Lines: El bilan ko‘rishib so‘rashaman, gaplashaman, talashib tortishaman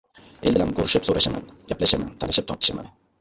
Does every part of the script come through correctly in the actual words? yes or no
yes